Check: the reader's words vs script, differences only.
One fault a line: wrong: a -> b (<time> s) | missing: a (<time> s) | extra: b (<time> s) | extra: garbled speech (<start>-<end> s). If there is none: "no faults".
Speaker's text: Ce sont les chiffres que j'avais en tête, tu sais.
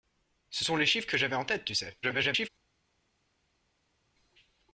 extra: garbled speech (2.0-2.5 s)